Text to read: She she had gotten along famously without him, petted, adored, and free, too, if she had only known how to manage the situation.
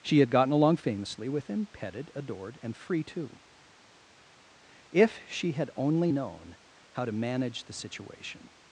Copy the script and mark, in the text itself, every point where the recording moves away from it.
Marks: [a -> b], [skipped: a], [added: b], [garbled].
She [skipped: she] had gotten along famously [without -> with] him, petted, adored, and free, too, if she had only known how to manage the situation.